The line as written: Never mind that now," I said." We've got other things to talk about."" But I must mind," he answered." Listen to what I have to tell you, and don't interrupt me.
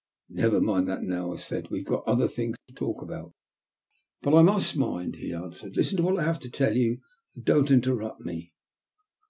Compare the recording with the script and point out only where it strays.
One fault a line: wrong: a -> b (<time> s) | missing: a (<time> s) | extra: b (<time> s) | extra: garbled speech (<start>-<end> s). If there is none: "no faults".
no faults